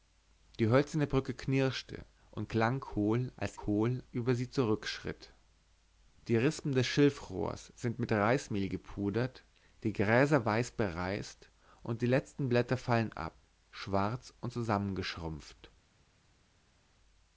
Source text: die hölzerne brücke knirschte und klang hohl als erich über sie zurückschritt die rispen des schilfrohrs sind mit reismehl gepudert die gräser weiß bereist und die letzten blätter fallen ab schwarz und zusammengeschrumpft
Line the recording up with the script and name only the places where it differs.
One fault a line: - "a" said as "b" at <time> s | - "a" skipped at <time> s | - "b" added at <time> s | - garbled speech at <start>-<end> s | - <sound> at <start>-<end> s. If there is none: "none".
- "erich" said as "hohl" at 3.7 s